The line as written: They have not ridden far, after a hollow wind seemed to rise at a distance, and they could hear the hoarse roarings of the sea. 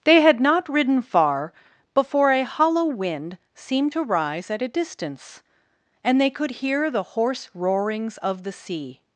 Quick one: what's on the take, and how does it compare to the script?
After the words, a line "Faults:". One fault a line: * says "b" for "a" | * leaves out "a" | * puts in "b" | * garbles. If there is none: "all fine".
They had not ridden far, before a hollow wind seemed to rise at a distance, and they could hear the hoarse roarings of the sea.
Faults:
* says "had" for "have"
* says "before" for "after"